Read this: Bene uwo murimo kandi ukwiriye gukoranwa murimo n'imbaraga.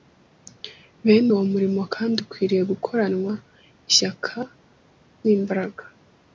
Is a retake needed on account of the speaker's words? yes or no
yes